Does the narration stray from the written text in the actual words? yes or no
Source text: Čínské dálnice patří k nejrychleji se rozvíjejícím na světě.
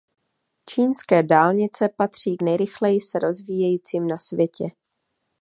no